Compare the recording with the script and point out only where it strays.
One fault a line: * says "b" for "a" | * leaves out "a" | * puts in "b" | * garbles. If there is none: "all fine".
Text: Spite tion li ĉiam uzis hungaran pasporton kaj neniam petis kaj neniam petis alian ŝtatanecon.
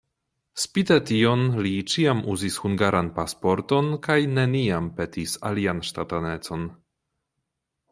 * leaves out "kaj neniam petis"